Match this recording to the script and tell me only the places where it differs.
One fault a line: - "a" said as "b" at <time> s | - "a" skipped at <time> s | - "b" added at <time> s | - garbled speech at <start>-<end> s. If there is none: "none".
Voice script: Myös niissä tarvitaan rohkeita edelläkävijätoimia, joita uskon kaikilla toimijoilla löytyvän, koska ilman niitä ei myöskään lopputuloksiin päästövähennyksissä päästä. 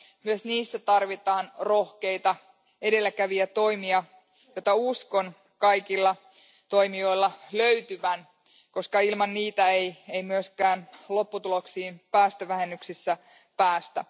none